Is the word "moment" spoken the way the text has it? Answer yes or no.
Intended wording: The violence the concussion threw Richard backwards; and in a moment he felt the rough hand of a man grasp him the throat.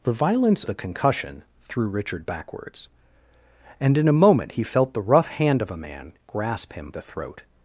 yes